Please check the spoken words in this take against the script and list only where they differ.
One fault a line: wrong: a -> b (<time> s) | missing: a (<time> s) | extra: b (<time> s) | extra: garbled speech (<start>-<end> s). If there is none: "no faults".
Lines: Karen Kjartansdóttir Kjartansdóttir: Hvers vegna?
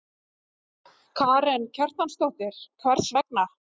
missing: Kjartansdóttir (2.6 s)